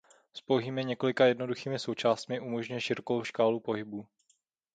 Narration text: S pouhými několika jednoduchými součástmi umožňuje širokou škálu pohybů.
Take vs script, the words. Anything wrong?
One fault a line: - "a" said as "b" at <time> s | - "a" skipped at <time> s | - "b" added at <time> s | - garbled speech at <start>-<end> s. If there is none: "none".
none